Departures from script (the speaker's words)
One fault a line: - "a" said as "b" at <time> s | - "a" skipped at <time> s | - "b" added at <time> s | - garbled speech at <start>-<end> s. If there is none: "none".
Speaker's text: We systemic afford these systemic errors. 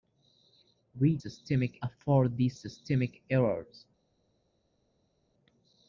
none